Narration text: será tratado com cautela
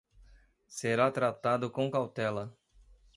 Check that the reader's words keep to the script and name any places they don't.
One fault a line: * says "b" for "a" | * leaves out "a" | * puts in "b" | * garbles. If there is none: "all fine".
all fine